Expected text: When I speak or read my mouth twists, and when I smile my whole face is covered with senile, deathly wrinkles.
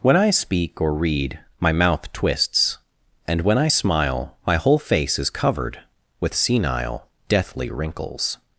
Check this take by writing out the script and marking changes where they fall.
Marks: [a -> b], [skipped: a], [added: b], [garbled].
When I speak or read my mouth twists, and when I smile my whole face is covered with senile, deathly wrinkles.